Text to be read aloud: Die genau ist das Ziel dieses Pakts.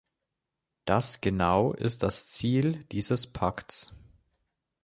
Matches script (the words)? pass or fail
fail